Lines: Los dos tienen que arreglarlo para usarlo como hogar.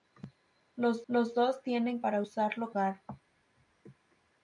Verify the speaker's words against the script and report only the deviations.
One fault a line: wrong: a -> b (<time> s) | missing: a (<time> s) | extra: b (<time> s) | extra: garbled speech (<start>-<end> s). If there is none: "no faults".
extra: los (1.1 s)
missing: que arreglarlo (2.0 s)
missing: como (2.7 s)